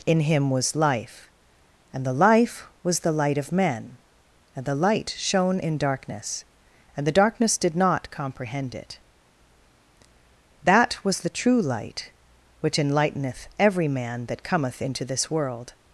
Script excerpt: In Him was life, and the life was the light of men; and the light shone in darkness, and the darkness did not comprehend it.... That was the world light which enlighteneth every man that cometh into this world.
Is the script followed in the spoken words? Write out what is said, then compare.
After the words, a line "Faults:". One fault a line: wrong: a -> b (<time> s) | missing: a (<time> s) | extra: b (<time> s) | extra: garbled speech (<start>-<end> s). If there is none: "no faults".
In Him was life, and the life was the light of men; and the light shone in darkness, and the darkness did not comprehend it.... That was the true light which enlighteneth every man that cometh into this world.
Faults:
wrong: world -> true (11.3 s)